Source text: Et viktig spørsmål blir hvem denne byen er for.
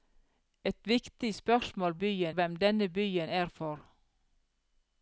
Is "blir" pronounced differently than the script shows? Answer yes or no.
yes